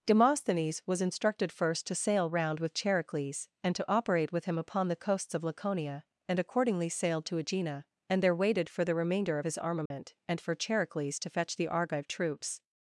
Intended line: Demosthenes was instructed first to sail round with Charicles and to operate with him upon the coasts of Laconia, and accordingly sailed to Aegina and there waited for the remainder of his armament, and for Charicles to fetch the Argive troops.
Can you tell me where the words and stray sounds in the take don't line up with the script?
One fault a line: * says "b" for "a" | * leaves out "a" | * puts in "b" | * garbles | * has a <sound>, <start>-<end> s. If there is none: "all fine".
* has a dropout, 9.9-9.9 s